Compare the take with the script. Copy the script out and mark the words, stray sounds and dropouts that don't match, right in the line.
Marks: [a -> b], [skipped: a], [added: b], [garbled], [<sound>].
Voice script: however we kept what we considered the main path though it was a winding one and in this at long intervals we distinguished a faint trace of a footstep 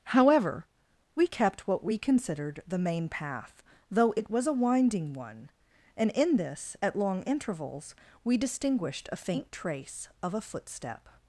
however we kept what we considered the main path though it was a winding one and in this at long intervals we distinguished a faint trace of a footstep